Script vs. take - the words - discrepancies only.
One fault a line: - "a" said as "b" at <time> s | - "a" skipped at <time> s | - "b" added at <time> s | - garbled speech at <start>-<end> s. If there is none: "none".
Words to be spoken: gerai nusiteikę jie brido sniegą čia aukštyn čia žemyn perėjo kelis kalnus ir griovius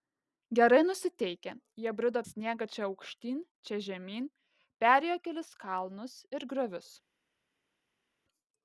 none